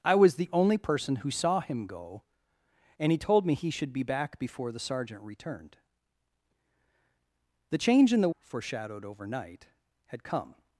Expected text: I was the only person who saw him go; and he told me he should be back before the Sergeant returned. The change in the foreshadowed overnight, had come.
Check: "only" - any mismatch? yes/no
no